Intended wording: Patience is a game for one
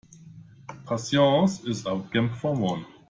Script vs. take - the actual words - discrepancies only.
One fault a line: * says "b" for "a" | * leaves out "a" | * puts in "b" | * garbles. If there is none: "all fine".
all fine